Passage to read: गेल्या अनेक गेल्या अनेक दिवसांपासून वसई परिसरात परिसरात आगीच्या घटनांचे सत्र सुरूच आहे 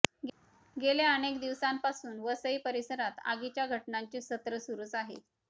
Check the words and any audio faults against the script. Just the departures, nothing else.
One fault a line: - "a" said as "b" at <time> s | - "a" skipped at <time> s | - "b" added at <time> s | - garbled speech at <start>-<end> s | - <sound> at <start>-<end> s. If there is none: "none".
- "गेल्या अनेक" skipped at 1.4 s
- "परिसरात" skipped at 3.2 s